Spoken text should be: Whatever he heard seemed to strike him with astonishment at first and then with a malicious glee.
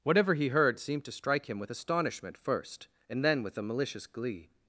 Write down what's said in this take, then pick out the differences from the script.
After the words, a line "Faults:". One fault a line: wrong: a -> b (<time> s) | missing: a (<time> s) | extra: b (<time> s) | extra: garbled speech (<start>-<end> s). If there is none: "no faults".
Whatever he heard seemed to strike him with astonishment first and then with a malicious glee.
Faults:
missing: at (2.4 s)